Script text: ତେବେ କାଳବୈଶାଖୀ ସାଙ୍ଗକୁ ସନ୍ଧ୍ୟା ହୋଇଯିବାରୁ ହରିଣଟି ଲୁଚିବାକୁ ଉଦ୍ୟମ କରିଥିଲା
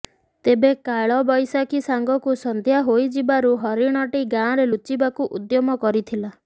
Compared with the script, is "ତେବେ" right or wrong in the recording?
right